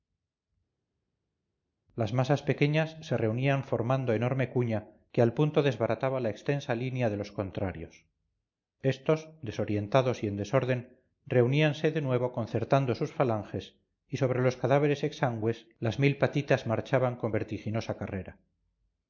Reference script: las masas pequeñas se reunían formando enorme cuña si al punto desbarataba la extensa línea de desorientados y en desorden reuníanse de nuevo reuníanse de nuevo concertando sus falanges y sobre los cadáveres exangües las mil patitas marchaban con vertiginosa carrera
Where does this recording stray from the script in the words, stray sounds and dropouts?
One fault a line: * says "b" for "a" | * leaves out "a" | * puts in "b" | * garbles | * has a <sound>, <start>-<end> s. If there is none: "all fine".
* says "que" for "si"
* puts in "los contrarios estos"
* leaves out "reuníanse de nuevo"